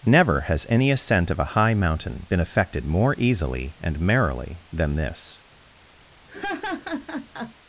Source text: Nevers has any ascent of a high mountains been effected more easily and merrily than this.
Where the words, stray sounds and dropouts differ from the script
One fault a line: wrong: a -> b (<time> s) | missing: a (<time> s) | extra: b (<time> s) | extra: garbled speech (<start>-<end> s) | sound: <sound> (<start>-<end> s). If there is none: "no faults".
wrong: Nevers -> Never (0.0 s)
wrong: mountains -> mountain (1.8 s)
sound: laugh (6.3-7.5 s)